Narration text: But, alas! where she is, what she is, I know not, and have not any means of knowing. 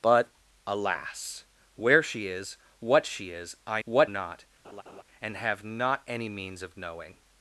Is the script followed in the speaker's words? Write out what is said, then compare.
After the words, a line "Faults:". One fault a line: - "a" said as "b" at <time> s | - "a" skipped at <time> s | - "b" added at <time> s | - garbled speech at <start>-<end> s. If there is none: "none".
But, alas! where she is, what she is, I what not, and have not any means of knowing.
Faults:
- "know" said as "what" at 3.8 s